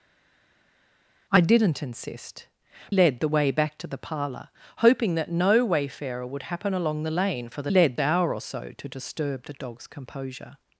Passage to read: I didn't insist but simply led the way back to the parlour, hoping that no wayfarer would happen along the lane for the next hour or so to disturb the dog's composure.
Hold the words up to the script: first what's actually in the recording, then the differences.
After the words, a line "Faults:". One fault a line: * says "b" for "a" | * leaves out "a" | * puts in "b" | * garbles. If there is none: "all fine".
I didn't insist led the way back to the parlour, hoping that no wayfarer would happen along the lane for the led hour or so to disturb the dog's composure.
Faults:
* leaves out "but simply"
* says "led" for "next"